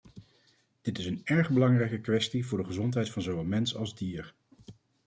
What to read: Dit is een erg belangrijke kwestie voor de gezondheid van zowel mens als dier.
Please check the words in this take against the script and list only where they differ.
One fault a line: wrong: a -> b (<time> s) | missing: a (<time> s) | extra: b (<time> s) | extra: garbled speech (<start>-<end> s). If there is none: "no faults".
no faults